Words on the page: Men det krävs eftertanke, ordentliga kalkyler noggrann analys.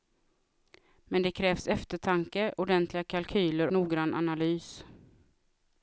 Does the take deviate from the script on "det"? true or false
false